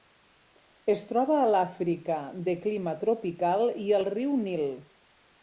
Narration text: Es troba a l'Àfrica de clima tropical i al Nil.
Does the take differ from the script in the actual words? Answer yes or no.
yes